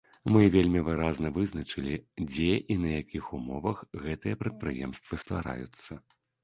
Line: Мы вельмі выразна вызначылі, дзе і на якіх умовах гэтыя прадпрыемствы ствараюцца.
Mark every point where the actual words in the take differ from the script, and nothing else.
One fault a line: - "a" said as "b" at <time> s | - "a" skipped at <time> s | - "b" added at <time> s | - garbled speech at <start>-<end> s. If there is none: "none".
none